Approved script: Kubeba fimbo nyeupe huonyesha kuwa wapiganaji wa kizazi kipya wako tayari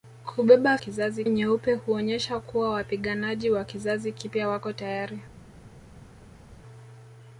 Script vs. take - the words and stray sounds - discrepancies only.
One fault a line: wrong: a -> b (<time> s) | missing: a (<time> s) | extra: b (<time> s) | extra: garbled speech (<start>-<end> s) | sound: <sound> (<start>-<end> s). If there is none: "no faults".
wrong: fimbo -> kizazi (0.8 s)